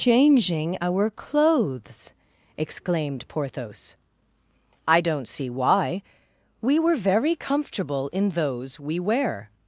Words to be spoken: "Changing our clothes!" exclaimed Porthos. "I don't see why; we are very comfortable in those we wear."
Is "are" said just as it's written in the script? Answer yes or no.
no